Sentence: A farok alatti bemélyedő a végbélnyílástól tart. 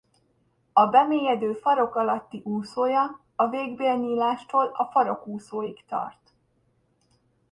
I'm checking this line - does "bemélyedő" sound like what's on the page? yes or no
no